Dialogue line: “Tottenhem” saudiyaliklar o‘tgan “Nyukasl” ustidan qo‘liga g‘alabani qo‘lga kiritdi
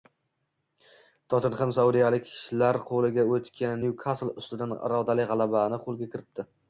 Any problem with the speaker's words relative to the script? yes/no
yes